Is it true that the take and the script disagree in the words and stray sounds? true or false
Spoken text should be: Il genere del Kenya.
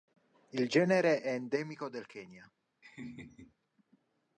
true